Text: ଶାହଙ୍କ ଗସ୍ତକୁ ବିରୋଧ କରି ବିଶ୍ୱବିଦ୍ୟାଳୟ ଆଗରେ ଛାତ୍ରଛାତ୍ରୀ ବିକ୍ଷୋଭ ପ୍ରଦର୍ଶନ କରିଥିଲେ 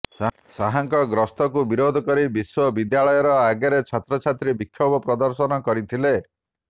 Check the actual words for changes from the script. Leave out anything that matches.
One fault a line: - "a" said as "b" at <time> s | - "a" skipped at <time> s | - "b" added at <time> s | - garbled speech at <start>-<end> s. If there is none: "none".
none